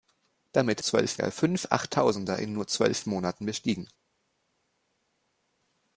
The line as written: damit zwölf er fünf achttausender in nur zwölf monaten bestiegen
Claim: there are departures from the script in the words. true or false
false